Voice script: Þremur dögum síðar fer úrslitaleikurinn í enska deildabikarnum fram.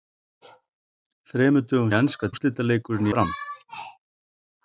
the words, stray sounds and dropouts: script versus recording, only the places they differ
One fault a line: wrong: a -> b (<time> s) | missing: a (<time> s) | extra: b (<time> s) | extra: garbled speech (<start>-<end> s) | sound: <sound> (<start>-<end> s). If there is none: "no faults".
missing: síðar fer úrslitaleikurinn (1.9 s)
wrong: deildabikarnum -> úrslitaleikurinn (2.3 s)